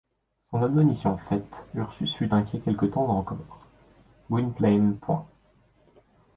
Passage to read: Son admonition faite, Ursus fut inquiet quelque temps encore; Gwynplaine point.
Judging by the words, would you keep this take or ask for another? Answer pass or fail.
pass